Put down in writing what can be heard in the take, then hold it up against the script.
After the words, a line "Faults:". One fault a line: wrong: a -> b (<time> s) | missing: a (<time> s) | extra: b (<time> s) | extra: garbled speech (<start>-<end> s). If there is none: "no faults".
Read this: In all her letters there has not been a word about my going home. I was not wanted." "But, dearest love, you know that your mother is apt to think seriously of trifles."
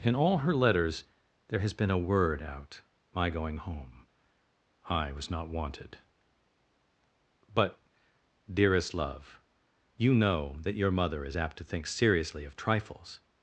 In all her letters there has been a word out my going home. I was not wanted." "But, dearest love, you know that your mother is apt to think seriously of trifles."
Faults:
missing: not (1.7 s)
wrong: about -> out (2.4 s)